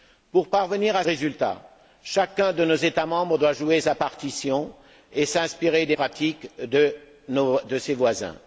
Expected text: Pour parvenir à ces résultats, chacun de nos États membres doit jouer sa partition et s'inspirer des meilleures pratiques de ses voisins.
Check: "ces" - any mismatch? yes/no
yes